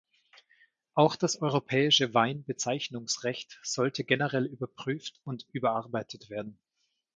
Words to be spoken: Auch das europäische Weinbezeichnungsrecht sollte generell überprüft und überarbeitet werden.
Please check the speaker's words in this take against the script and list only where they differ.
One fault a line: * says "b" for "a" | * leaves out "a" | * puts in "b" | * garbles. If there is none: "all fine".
all fine